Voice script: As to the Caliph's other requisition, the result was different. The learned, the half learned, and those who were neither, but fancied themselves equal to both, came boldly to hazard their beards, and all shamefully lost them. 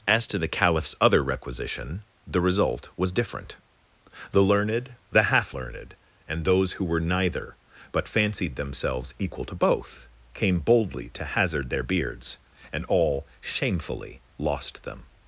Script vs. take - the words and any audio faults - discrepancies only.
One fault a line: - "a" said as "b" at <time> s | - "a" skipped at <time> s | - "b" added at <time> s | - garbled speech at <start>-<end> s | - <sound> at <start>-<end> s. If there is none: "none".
none